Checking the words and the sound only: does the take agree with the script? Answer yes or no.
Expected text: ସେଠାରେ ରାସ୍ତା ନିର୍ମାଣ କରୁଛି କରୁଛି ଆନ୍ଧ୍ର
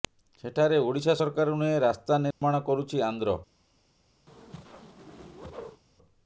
no